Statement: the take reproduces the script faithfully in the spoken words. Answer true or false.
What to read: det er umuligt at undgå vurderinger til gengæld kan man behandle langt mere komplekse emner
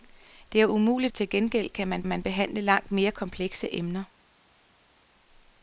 false